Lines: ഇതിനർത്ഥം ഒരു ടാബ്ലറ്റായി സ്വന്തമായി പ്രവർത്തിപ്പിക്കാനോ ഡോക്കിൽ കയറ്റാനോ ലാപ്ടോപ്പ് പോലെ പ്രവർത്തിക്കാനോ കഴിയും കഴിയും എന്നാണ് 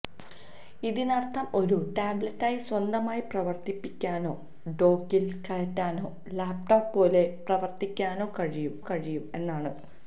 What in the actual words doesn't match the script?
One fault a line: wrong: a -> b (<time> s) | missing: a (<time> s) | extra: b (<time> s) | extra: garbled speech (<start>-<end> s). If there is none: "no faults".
no faults